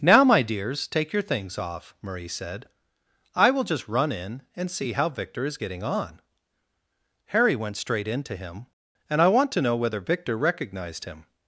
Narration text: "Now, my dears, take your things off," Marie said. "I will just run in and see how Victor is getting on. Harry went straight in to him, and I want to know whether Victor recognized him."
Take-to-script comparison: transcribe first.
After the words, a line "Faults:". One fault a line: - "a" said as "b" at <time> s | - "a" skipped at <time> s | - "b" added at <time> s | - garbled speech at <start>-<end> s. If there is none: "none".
"Now, my dears, take your things off," Marie said. "I will just run in and see how Victor is getting on. Harry went straight in to him, and I want to know whether Victor recognized him."
Faults:
none